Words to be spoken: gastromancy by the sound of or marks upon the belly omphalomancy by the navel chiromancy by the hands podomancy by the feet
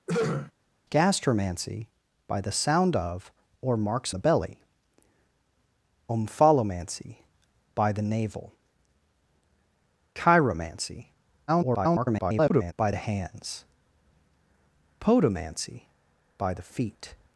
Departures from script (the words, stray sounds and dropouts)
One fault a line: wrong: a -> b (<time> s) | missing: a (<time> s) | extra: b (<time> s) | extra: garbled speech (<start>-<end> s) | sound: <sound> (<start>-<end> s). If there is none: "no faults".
sound: throat clearing (0.1-0.5 s)
missing: upon (4.1 s)
extra: garbled speech (11.5-12.7 s)